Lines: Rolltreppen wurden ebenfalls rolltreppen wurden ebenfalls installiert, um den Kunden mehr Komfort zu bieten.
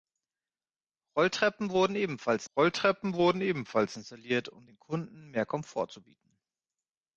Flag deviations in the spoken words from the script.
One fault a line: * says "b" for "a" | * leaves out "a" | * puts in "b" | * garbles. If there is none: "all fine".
all fine